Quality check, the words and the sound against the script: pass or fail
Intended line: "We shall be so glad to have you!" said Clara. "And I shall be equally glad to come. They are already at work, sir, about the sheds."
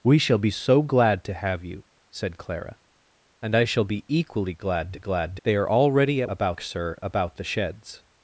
fail